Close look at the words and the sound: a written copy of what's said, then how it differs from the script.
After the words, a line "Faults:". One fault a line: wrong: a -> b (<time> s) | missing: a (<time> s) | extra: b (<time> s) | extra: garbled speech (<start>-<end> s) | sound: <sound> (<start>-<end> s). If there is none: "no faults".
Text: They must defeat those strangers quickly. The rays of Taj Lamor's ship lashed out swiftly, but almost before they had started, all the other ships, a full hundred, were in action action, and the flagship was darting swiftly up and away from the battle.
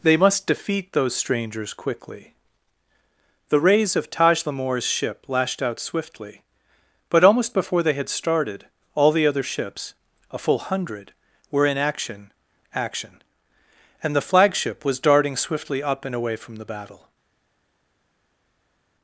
They must defeat those strangers quickly. The rays of Taj Lamor's ship lashed out swiftly, but almost before they had started, all the other ships, a full hundred, were in action action, and the flagship was darting swiftly up and away from the battle.
Faults:
no faults